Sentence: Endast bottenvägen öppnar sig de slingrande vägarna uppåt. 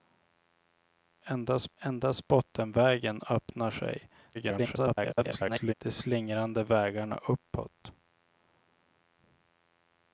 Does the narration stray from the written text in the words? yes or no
yes